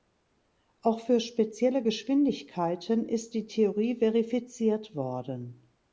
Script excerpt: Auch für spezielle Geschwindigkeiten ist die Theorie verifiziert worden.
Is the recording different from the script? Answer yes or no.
no